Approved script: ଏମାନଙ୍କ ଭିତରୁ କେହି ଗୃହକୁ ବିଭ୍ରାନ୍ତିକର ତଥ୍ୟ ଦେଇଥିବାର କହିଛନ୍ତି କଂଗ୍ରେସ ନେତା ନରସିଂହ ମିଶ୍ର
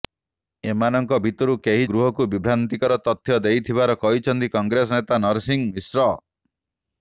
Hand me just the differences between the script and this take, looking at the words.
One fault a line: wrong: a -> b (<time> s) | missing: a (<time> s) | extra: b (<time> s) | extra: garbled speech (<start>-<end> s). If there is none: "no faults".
no faults